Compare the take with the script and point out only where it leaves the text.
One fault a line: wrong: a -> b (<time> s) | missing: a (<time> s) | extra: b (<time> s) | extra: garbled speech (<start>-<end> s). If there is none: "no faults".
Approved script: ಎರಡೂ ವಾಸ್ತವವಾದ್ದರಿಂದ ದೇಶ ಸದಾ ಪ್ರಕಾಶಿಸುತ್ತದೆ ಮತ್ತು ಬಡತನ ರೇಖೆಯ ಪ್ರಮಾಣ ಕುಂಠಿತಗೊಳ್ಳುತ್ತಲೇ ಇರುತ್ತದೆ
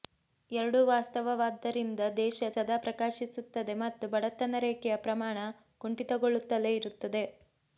no faults